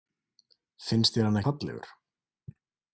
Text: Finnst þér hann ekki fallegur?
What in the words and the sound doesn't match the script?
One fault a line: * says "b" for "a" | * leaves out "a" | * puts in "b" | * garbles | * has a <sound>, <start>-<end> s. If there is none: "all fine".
* leaves out "ekki"